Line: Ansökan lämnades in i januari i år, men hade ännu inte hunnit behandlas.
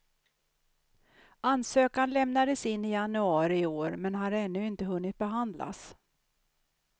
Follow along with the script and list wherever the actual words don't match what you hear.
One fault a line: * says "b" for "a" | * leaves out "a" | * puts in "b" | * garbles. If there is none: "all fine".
* says "har" for "hade"